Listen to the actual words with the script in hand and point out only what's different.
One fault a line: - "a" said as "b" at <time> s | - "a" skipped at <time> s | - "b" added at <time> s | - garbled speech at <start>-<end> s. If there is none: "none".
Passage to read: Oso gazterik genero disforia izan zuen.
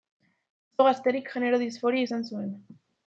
none